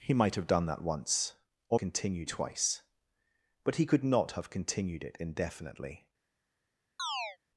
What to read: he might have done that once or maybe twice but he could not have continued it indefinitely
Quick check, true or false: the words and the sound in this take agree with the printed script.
false